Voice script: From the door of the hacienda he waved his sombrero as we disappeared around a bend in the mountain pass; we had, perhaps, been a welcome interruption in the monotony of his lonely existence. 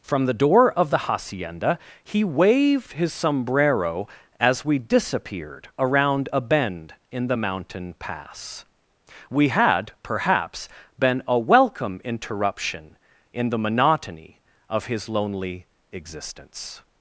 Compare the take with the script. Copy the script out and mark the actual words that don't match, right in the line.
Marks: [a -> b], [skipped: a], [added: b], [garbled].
From the door of the hacienda he waved his sombrero as we disappeared around a bend in the mountain pass; we had, perhaps, been a welcome interruption in the monotony of his lonely existence.